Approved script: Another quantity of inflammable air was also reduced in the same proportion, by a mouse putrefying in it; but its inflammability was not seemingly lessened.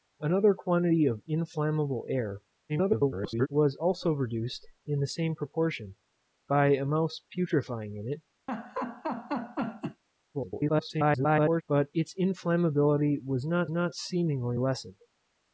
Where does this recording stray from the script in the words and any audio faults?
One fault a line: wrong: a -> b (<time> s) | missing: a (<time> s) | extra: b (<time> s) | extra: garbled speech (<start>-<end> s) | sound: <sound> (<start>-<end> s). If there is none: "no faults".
extra: garbled speech (2.7-3.5 s)
sound: laugh (8.5-10.0 s)
extra: garbled speech (10.3-11.6 s)
extra: not (13.7 s)